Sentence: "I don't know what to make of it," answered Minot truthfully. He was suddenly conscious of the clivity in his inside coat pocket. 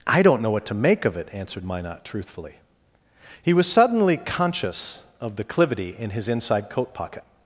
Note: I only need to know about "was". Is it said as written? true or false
true